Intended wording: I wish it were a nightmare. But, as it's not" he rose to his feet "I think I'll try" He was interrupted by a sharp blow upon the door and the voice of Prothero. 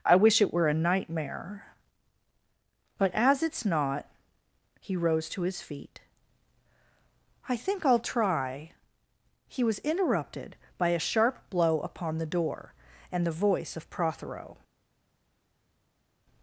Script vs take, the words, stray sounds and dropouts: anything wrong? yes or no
no